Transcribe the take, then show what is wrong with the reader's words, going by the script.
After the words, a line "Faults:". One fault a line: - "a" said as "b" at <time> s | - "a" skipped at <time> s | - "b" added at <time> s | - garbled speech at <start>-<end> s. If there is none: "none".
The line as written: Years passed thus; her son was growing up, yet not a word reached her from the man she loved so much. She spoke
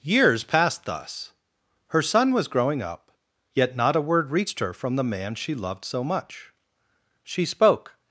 Years passed thus; her son was growing up, yet not a word reached her from the man she loved so much. She spoke
Faults:
none